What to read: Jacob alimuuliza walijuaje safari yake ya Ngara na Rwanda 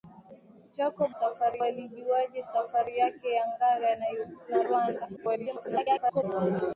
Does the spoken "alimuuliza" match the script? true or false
false